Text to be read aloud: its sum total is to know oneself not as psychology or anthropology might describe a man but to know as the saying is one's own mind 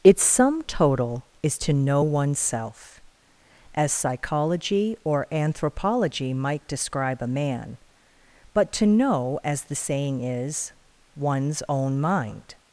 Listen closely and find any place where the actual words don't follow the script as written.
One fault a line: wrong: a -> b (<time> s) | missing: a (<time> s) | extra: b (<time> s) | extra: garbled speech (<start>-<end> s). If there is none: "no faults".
missing: not (3.0 s)